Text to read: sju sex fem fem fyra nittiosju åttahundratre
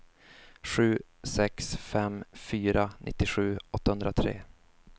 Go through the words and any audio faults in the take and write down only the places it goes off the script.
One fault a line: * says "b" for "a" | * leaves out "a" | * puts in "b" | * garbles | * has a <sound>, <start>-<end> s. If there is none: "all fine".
* leaves out "fem"